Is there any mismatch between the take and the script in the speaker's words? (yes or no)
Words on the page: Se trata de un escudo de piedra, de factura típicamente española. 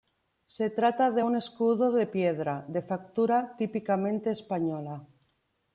no